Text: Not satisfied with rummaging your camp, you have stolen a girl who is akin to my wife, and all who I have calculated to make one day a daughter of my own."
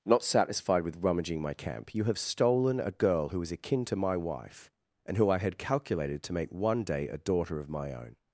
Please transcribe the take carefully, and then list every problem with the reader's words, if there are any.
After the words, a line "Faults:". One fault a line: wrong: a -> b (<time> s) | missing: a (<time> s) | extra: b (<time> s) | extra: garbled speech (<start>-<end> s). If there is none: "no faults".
Not satisfied with rummaging my camp, you have stolen a girl who is akin to my wife, and who I had calculated to make one day a daughter of my own."
Faults:
wrong: your -> my (1.4 s)
missing: all (5.2 s)
wrong: have -> had (5.4 s)